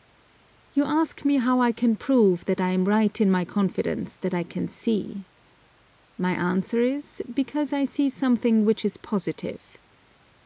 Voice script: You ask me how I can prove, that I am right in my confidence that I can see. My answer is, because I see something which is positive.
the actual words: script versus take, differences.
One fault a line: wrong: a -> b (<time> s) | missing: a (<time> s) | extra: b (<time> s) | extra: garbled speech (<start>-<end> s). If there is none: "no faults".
no faults